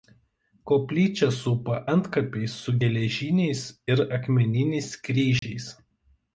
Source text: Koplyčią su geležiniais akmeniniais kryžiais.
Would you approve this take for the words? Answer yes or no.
no